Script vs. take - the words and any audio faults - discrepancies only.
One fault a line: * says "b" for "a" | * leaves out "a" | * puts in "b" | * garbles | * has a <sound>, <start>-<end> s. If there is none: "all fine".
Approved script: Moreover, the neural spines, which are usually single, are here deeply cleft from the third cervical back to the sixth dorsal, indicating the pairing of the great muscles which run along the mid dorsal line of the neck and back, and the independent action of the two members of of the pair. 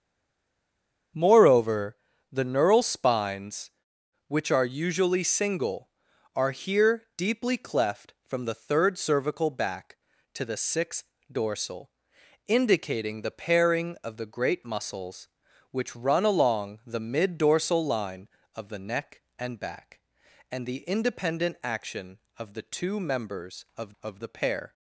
all fine